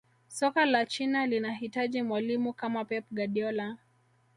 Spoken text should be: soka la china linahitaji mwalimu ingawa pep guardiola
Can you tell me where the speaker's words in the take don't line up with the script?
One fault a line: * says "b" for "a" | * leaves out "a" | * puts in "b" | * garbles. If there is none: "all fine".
* says "kama" for "ingawa"